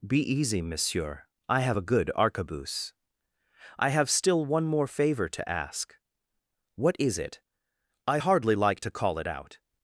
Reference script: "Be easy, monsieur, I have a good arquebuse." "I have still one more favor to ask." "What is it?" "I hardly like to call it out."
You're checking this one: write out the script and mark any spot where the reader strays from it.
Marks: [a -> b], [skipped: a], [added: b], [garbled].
"Be easy, monsieur, I have a good arquebuse." "I have still one more favor to ask." "What is it?" "I hardly like to call it out."